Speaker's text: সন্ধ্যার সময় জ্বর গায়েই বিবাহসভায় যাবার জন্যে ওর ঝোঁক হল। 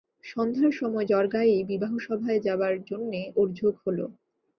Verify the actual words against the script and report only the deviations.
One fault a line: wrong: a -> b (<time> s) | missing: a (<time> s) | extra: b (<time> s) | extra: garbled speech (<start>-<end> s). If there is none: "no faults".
no faults